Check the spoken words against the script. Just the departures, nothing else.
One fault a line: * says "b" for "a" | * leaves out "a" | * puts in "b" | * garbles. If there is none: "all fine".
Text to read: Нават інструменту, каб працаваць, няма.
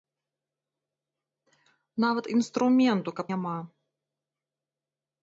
* leaves out "працаваць"